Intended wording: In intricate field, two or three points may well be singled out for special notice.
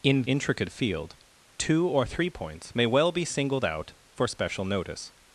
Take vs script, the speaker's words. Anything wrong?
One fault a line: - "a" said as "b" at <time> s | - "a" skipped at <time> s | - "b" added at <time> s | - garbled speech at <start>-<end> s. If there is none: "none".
none